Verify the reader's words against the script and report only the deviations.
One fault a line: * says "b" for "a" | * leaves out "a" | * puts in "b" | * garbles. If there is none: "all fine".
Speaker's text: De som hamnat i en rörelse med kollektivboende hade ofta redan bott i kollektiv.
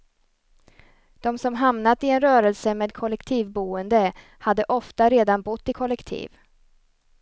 all fine